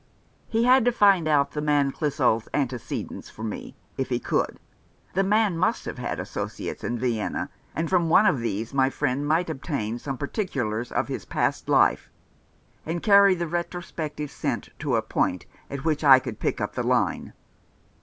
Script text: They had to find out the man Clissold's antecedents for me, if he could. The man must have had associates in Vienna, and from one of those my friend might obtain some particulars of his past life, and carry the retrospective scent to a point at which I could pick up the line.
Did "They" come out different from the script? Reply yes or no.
yes